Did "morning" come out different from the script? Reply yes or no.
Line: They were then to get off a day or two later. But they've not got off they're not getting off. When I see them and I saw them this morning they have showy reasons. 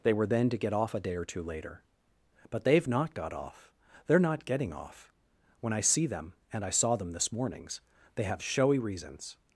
yes